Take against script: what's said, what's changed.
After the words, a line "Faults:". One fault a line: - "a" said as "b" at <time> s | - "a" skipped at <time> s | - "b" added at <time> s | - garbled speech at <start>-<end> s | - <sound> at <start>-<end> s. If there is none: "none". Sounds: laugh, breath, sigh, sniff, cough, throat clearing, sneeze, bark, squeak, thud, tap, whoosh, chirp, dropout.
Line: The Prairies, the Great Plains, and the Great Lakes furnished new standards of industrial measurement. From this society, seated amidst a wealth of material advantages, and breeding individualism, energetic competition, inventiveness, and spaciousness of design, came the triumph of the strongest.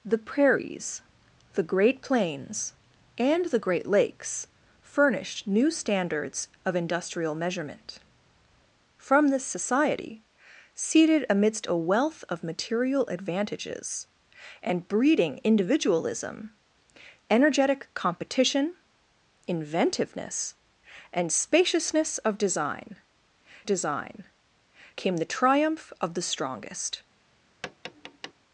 The Prairies, the Great Plains, and the Great Lakes furnished new standards of industrial measurement. From this society, seated amidst a wealth of material advantages, and breeding individualism, energetic competition, inventiveness, and spaciousness of design design, came the triumph of the strongest.
Faults:
- "design" added at 23.7 s
- tap at 27.6-28.3 s